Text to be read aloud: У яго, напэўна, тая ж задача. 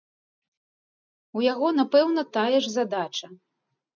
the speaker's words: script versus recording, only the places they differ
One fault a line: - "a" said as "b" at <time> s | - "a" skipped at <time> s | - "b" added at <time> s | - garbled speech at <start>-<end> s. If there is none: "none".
none